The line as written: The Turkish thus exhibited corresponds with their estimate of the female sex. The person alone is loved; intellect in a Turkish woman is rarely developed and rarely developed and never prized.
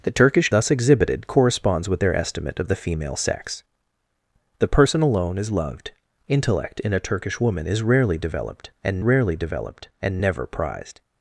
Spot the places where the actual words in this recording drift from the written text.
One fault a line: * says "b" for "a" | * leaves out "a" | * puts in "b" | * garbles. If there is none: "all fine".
all fine